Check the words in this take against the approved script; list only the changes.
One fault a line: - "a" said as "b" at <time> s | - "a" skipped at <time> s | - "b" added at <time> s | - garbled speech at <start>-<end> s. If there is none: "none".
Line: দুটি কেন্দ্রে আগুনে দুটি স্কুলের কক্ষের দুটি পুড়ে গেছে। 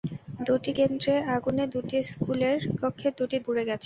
none